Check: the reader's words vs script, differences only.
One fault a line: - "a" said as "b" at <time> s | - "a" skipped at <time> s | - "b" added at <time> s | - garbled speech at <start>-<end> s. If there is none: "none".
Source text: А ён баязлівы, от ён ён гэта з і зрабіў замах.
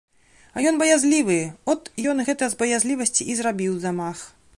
- "ён" skipped at 2.2 s
- "баязлівасці" added at 2.6 s